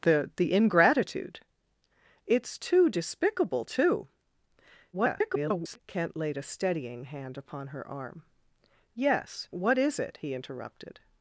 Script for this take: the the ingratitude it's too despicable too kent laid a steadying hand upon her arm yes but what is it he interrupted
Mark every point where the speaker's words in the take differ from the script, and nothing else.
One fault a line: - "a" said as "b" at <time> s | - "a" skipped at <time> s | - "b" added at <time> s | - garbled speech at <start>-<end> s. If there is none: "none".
- garbled speech at 4.9-5.8 s
- "but" skipped at 9.5 s